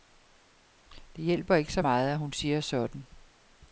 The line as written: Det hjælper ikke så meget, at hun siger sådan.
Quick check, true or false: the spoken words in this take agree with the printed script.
true